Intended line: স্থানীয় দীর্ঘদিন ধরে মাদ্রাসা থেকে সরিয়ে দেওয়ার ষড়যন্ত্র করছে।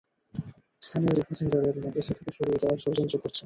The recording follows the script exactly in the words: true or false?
true